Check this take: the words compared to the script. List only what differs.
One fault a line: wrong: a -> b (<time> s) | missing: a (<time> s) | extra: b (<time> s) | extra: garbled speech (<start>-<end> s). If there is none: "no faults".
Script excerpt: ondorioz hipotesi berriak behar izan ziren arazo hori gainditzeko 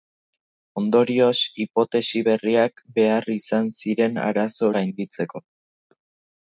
missing: hori (4.7 s)